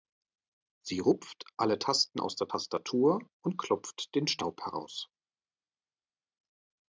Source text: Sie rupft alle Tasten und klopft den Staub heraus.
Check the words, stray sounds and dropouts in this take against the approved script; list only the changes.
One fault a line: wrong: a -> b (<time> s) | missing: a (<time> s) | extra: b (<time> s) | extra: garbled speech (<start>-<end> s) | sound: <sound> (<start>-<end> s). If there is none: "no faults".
extra: aus der Tastatur (2.2 s)